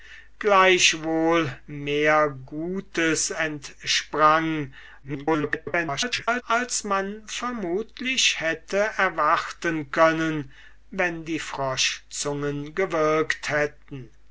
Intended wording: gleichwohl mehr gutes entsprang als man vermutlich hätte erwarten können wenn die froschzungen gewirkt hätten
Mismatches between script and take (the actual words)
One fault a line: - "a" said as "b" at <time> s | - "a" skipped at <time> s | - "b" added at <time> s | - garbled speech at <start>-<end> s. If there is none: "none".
- garbled speech at 5.0-6.4 s